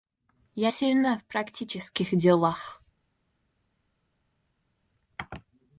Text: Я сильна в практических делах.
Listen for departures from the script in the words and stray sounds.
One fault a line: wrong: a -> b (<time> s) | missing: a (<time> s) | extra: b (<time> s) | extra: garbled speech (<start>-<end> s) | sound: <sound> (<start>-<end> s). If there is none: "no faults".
no faults